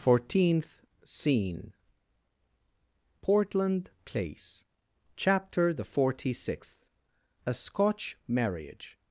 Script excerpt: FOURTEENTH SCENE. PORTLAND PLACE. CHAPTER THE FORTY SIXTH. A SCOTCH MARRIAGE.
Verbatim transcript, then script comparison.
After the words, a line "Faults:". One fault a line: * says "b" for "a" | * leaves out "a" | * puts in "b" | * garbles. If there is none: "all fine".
FOURTEENTH SCENE. PORTLAND PLACE. CHAPTER THE FORTY SIXTH. A SCOTCH MARRIAGE.
Faults:
all fine